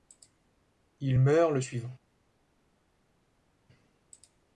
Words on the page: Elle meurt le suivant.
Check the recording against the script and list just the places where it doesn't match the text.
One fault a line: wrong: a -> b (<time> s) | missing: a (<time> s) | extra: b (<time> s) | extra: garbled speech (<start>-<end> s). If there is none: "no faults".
wrong: Elle -> Il (1.0 s)